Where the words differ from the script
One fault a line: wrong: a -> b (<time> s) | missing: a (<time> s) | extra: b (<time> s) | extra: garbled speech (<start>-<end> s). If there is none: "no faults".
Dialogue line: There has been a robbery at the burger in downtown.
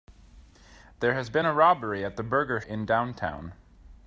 no faults